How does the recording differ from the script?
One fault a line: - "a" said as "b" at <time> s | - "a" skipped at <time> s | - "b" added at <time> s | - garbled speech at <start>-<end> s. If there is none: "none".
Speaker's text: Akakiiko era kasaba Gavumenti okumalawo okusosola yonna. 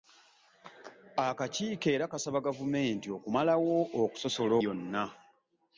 none